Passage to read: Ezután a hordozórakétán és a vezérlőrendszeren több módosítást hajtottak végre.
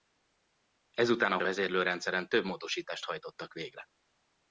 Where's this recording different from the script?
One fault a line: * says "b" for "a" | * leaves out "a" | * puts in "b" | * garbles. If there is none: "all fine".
* leaves out "hordozórakétán és"